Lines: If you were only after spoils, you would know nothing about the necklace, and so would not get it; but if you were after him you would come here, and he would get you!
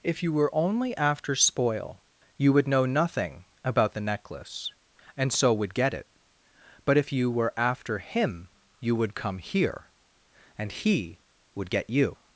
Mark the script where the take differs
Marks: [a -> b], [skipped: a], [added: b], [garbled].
If you were only after [spoils, -> spoil] you would know nothing about the necklace, and so would [skipped: not] get it; but if you were after him you would come here, and he would get you!